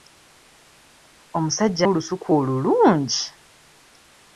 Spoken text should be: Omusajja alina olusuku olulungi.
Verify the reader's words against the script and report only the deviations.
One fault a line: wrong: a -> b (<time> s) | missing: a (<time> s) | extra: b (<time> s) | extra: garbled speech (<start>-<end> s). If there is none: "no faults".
missing: alina (1.9 s)